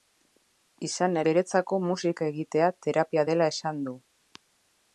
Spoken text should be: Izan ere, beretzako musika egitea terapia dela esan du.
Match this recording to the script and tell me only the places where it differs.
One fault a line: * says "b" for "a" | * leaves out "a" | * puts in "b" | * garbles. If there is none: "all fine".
* leaves out "ere"